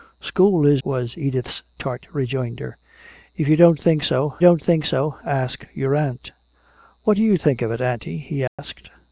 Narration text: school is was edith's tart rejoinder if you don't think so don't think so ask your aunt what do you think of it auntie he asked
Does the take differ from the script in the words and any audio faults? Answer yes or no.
yes